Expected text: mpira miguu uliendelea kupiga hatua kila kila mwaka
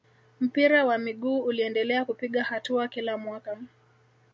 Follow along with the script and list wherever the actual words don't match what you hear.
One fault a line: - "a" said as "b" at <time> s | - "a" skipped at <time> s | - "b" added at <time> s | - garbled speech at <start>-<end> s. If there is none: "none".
- "wa" added at 0.8 s
- "kila" skipped at 3.2 s